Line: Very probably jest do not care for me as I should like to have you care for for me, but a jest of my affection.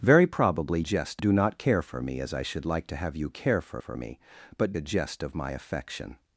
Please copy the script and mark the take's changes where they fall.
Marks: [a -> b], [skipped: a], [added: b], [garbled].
Very probably jest do not care for me as I should like to have you care for for me, but a jest of my affection.